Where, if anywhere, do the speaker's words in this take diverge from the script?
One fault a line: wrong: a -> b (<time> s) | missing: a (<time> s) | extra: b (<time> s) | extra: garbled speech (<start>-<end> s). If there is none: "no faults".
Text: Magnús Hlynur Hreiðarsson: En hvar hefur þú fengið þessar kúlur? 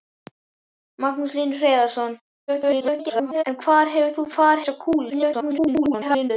extra: garbled speech (2.5-3.4 s)
wrong: fengið -> hvar (4.4 s)
extra: garbled speech (5.1-6.3 s)